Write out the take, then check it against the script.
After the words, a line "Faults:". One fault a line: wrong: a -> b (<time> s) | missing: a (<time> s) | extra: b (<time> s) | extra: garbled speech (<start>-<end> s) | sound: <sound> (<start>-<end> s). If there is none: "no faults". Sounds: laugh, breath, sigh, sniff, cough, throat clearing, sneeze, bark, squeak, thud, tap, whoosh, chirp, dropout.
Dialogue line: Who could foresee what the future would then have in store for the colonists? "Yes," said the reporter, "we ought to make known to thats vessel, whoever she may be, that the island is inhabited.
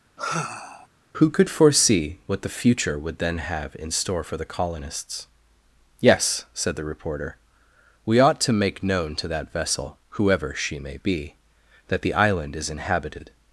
Who could foresee what the future would then have in store for the colonists? "Yes," said the reporter, "we ought to make known to that vessel, whoever she may be, that the island is inhabited.
Faults:
sound: sigh (0.2-0.9 s)
wrong: thats -> that (9.3 s)